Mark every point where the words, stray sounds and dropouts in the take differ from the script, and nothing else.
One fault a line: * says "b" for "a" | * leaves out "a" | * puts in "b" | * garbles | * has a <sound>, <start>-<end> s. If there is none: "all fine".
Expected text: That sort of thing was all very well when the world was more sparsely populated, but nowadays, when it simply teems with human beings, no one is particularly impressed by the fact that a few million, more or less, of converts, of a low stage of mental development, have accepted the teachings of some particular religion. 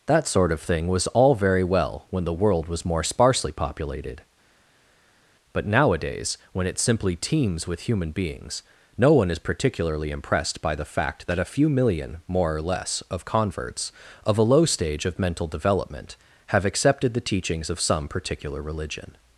all fine